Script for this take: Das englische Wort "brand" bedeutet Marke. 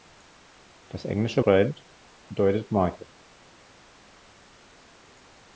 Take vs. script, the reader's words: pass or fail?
fail